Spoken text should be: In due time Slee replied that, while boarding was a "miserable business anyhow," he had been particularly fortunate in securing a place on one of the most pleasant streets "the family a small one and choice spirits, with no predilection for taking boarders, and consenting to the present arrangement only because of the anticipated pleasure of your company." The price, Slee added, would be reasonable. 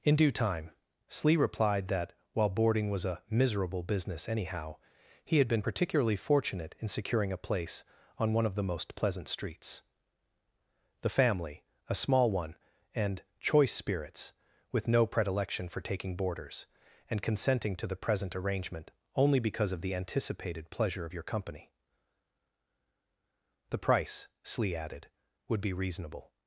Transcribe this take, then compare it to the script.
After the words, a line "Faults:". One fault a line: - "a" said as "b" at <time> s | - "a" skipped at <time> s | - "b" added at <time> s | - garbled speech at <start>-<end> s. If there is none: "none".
In due time Slee replied that, while boarding was a "miserable business anyhow," he had been particularly fortunate in securing a place on one of the most pleasant streets "the family a small one and choice spirits, with no predilection for taking boarders, and consenting to the present arrangement only because of the anticipated pleasure of your company." The price, Slee added, would be reasonable.
Faults:
none